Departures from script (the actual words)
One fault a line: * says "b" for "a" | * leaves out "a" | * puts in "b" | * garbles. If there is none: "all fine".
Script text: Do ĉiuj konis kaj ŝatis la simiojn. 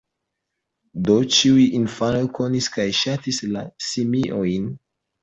* puts in "infanoj"